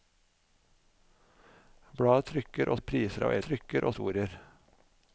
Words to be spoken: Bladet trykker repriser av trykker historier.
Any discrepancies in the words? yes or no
no